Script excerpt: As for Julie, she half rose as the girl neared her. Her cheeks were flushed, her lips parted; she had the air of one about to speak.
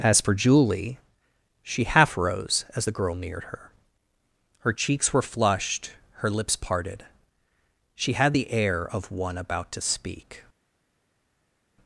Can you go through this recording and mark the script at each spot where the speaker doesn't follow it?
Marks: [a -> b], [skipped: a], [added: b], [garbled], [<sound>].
As for Julie, she half rose as the girl neared her. Her cheeks were flushed, her lips parted; she had the air of one about to speak.